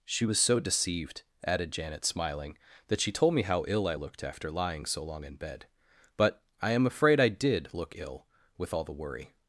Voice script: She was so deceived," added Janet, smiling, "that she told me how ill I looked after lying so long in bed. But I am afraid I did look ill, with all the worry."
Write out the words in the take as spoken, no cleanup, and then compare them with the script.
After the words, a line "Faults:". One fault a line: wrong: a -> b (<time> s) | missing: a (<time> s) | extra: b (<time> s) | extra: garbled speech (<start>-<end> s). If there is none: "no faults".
She was so deceived," added Janet, smiling, "that she told me how ill I looked after lying so long in bed. But I am afraid I did look ill, with all the worry."
Faults:
no faults